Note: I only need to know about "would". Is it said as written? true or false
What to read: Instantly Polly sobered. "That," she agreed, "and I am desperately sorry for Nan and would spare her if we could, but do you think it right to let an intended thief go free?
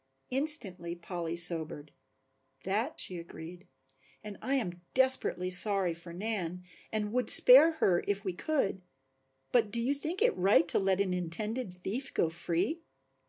true